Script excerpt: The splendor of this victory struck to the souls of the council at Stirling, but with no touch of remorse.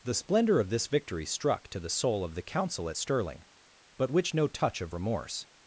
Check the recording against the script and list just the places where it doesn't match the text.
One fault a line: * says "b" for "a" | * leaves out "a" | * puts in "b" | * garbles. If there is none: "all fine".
* says "soul" for "souls"
* says "which" for "with"